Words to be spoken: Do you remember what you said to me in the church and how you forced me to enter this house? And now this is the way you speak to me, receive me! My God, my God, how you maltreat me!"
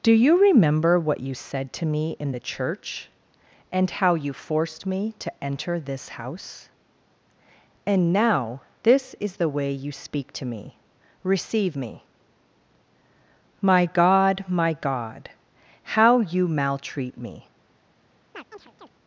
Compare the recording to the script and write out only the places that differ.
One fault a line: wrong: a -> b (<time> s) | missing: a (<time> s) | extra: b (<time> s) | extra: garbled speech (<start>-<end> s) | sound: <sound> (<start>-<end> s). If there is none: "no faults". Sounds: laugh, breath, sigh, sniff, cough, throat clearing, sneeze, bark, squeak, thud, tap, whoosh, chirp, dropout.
sound: chirp (18.3-18.9 s)